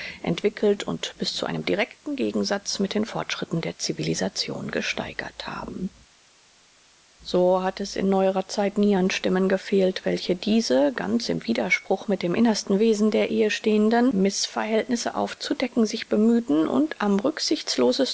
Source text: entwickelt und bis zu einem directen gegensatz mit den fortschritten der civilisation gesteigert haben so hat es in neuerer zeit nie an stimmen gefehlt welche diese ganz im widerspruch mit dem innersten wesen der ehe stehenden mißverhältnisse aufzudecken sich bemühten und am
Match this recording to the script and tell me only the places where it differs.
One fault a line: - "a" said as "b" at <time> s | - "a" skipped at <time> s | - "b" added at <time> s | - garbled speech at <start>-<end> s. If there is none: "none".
none